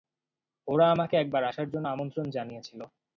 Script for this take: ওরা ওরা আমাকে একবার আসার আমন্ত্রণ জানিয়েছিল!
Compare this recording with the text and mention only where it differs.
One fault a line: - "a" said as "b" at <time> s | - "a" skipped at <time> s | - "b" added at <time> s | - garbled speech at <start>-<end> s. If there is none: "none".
- "ওরা" skipped at 0.8 s
- "জন্য" added at 1.7 s